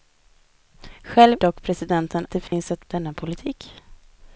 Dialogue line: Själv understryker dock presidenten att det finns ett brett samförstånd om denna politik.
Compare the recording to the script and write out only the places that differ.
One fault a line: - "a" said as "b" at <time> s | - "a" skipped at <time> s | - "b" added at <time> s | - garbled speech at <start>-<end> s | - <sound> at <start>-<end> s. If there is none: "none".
- "understryker" skipped at 1.4 s
- "att" skipped at 2.3 s
- dropout at 2.5-2.5 s
- "brett samförstånd om" skipped at 2.9 s